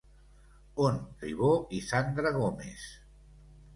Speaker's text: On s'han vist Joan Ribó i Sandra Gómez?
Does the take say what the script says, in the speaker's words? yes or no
no